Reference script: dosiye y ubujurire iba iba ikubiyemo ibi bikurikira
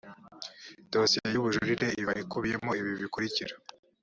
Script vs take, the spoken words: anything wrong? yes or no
yes